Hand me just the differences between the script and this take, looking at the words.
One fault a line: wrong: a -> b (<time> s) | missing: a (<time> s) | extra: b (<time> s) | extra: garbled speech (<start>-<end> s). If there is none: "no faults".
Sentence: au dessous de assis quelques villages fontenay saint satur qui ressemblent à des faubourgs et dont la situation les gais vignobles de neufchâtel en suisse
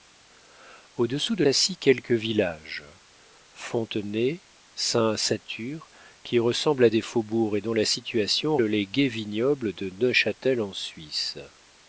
no faults